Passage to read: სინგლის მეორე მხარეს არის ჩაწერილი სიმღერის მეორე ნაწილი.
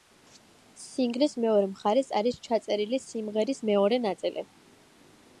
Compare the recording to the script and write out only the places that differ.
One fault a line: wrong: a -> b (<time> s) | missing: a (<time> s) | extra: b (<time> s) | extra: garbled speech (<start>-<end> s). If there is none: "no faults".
no faults